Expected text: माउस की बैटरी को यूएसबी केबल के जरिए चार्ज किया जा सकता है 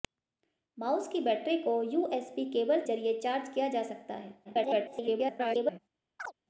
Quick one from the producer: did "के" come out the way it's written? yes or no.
no